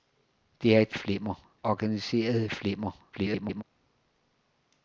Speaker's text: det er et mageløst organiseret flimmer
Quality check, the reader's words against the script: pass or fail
fail